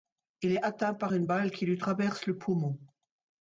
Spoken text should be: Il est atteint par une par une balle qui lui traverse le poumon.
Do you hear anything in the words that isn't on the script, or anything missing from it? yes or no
yes